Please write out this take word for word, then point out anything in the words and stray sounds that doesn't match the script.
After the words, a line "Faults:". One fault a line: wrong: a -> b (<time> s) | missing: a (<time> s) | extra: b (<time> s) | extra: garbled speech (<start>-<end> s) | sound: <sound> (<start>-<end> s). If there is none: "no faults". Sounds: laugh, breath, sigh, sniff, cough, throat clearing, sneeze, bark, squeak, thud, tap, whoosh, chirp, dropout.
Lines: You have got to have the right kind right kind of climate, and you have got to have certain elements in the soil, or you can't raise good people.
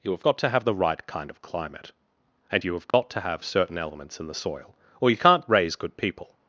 You have got to have the right kind of climate, and you have got to have certain elements in the soil, or you can't raise good people.
Faults:
missing: right kind (1.3 s)
sound: dropout (2.9-2.9 s)